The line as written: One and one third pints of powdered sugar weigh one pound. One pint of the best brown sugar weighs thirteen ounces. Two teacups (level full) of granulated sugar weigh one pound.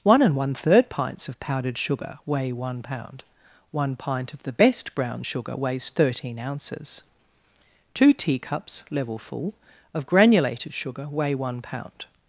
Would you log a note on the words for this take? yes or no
no